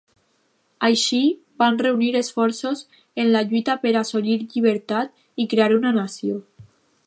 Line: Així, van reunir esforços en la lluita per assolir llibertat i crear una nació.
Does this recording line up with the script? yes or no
yes